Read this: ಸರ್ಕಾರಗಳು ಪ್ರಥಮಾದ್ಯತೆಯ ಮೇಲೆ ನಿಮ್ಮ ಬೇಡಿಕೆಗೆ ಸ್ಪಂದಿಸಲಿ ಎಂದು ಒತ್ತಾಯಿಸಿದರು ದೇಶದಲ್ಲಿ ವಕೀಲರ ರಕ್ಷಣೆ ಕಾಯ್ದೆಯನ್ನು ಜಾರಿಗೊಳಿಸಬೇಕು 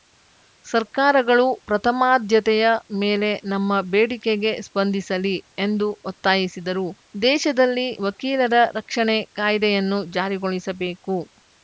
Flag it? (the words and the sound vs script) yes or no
yes